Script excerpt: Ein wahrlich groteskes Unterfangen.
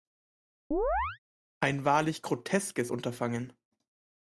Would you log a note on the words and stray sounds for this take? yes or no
yes